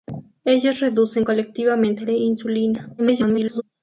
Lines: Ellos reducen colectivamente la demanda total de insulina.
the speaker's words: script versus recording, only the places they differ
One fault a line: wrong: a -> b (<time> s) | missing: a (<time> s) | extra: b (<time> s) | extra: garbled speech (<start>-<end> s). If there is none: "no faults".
missing: la demanda total (2.1 s)
extra: garbled speech (3.0-3.6 s)